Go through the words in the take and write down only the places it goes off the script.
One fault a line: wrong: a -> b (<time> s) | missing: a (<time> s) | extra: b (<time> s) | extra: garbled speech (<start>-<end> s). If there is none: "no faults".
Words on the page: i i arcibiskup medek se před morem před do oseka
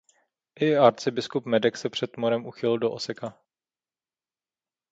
missing: i (0.8 s)
wrong: před -> uchýlil (2.5 s)